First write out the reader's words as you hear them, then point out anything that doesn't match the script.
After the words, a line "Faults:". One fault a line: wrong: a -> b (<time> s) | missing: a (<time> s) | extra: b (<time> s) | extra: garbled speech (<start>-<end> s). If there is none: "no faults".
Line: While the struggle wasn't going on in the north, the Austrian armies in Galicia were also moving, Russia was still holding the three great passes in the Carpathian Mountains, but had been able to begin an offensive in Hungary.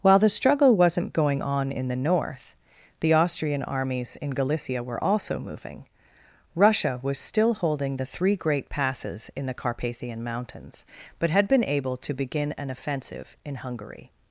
While the struggle wasn't going on in the north, the Austrian armies in Galicia were also moving, Russia was still holding the three great passes in the Carpathian Mountains, but had been able to begin an offensive in Hungary.
Faults:
no faults